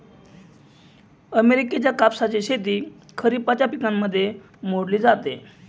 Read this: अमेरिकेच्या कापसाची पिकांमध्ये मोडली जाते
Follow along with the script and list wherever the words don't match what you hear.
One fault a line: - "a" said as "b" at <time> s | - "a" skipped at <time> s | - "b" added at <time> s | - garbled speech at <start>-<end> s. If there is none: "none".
- "शेती खरिपाच्या" added at 2.4 s